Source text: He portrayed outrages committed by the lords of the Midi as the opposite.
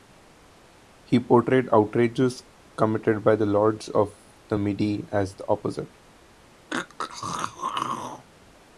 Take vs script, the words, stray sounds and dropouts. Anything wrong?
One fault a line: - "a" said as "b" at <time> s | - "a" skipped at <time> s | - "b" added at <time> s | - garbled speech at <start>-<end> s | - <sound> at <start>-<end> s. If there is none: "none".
- throat clearing at 6.7-8.3 s